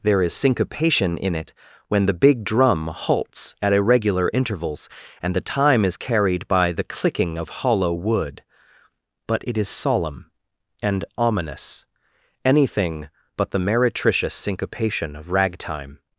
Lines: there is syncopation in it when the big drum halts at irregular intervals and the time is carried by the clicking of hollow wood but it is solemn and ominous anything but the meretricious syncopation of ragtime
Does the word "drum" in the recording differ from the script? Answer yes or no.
no